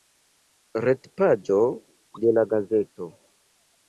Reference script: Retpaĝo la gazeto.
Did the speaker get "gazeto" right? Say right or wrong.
right